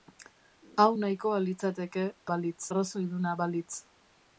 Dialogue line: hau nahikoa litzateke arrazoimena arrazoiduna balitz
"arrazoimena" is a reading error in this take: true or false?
true